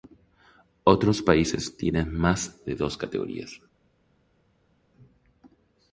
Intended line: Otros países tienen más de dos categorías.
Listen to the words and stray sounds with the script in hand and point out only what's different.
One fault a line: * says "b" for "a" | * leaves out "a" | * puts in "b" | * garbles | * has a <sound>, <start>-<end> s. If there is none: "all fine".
all fine